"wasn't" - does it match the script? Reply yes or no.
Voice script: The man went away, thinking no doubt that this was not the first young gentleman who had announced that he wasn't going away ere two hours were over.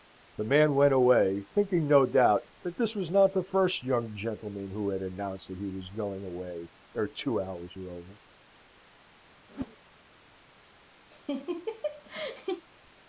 no